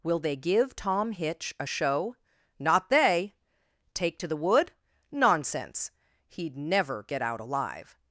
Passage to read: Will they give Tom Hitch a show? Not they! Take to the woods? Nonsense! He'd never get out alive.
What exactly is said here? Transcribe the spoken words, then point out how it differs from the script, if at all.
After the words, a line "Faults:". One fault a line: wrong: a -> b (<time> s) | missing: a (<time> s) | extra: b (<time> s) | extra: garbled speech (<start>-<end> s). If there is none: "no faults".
Will they give Tom Hitch a show? Not they! Take to the wood? Nonsense! He'd never get out alive.
Faults:
wrong: woods -> wood (4.4 s)